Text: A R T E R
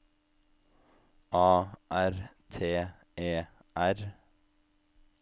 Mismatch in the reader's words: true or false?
false